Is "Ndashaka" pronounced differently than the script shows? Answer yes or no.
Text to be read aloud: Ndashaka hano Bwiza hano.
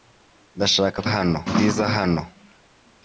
no